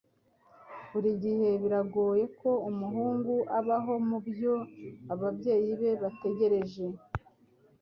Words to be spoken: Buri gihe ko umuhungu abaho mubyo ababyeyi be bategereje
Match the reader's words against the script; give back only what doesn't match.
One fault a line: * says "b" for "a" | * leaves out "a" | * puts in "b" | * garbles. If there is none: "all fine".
* puts in "biragoye"